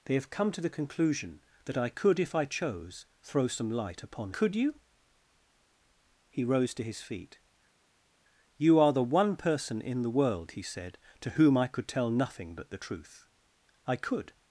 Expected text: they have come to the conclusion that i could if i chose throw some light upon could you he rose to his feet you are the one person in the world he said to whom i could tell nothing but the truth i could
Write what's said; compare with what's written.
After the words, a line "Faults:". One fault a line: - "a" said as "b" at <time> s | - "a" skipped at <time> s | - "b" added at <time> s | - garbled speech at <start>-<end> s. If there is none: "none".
they have come to the conclusion that i could if i chose throw some light upon could you he rose to his feet you are the one person in the world he said to whom i could tell nothing but the truth i could
Faults:
none